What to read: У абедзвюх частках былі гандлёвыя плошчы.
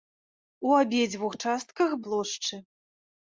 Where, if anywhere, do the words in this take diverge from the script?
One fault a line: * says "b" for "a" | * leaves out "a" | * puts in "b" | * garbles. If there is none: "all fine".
* leaves out "былі гандлёвыя"